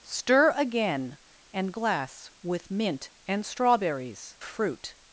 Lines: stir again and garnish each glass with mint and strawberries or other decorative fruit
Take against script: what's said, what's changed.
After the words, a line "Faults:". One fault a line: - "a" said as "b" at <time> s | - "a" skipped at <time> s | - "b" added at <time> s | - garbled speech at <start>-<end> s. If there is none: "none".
stir again and glass with mint and strawberries fruit
Faults:
- "garnish each" skipped at 1.8 s
- "or other decorative" skipped at 4.4 s